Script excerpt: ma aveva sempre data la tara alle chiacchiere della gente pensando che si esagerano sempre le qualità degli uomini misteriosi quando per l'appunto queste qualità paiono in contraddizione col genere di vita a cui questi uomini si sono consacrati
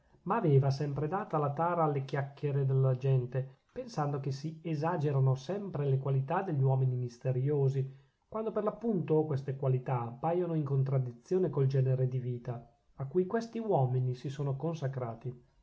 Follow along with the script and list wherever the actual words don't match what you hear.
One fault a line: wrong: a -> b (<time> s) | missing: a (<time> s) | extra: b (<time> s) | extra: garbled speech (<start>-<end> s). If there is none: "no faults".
no faults